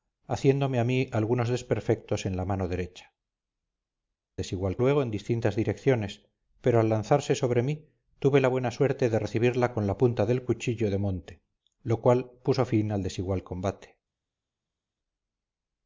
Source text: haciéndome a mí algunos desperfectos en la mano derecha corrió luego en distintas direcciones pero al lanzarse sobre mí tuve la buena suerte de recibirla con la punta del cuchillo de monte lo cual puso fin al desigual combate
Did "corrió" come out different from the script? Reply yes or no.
yes